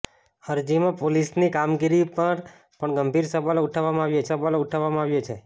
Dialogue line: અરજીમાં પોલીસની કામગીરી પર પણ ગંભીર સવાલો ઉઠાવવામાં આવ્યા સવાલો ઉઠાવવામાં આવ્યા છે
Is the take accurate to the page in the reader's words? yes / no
yes